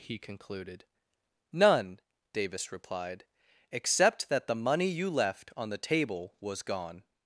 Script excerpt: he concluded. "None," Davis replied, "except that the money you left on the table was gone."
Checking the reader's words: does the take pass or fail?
pass